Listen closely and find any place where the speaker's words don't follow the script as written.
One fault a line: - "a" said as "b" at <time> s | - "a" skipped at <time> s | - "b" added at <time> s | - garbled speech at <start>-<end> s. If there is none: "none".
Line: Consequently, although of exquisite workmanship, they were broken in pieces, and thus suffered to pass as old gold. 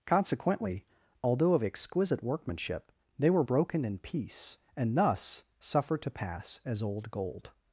- "pieces" said as "piece" at 4.0 s